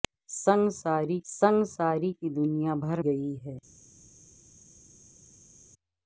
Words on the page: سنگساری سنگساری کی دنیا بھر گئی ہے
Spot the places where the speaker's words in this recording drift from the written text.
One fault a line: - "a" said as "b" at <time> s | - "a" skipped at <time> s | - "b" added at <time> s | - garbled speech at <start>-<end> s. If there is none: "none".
none